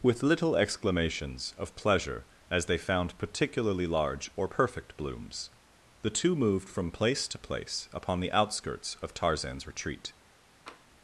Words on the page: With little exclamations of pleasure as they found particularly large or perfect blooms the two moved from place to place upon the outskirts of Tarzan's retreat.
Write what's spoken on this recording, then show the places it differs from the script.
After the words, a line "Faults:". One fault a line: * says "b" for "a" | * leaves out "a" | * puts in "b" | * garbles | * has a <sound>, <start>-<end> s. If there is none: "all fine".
With little exclamations of pleasure as they found particularly large or perfect blooms the two moved from place to place upon the outskirts of Tarzan's retreat.
Faults:
* has a tap, 10.7-10.9 s